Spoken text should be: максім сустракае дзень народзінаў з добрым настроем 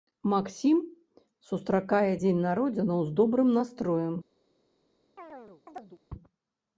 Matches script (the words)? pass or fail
pass